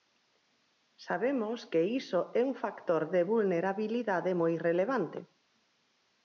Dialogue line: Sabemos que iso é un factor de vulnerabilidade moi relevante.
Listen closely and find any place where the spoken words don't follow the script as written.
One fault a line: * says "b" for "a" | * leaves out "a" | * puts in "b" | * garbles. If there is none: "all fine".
all fine